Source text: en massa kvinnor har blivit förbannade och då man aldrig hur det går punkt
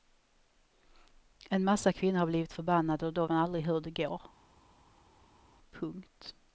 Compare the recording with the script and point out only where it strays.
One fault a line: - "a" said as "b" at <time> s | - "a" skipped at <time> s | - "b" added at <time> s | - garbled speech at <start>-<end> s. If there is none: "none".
none